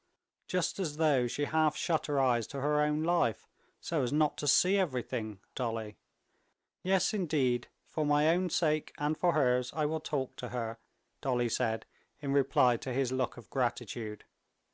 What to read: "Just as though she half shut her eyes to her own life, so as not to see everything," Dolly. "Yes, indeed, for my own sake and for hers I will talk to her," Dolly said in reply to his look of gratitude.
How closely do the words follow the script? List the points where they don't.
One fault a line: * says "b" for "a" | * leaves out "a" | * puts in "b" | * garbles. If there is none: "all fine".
all fine